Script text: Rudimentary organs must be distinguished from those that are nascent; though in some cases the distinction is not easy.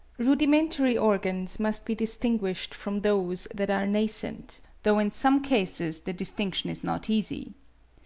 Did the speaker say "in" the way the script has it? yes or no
yes